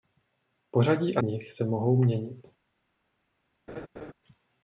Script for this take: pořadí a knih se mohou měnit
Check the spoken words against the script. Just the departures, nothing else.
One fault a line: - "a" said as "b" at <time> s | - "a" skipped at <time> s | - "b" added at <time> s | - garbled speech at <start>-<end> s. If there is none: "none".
none